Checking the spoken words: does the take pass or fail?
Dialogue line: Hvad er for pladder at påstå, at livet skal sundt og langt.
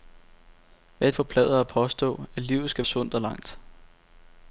pass